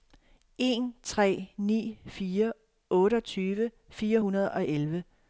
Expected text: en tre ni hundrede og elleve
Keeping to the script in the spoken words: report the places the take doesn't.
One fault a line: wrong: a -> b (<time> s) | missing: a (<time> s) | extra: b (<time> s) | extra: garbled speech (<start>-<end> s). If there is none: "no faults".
extra: fire otteogtyve fire (2.0 s)